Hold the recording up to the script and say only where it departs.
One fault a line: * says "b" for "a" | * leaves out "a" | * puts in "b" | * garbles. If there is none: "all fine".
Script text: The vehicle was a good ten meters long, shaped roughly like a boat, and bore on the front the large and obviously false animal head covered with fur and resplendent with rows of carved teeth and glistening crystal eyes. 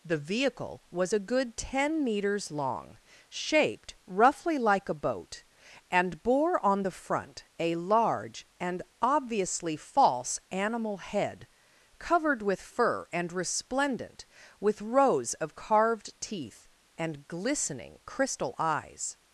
* says "a" for "the"